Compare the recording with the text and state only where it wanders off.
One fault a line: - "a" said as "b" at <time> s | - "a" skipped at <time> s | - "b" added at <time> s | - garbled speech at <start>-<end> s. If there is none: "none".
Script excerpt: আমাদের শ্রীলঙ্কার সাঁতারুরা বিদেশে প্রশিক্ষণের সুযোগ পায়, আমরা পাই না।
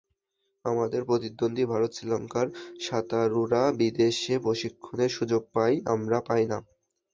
- "প্রতিদ্বন্দ্বী ভারত" added at 1.1 s